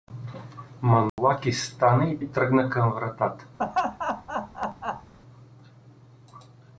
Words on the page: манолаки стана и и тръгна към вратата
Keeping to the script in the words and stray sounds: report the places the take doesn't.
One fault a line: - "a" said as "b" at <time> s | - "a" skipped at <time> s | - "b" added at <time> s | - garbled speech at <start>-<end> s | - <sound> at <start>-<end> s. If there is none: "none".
- dropout at 1.1-1.2 s
- laugh at 3.6-5.1 s